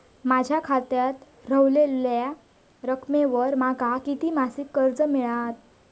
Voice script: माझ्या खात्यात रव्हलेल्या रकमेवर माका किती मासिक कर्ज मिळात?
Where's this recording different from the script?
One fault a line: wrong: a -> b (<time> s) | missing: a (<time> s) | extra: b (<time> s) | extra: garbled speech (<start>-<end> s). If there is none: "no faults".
no faults